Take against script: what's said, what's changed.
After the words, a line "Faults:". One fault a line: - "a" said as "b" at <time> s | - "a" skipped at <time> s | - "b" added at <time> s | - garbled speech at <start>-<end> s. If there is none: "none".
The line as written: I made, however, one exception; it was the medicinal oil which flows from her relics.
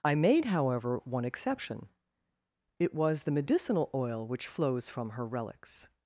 I made, however, one exception; it was the medicinal oil which flows from her relics.
Faults:
none